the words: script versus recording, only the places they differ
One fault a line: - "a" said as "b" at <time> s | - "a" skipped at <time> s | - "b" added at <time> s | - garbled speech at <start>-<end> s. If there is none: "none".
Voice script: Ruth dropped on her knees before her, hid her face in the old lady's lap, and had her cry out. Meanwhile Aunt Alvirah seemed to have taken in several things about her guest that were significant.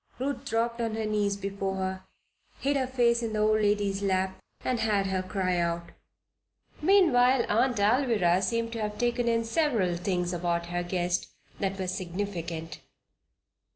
none